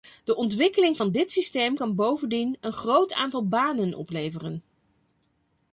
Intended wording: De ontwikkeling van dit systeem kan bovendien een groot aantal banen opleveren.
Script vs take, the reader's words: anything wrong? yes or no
no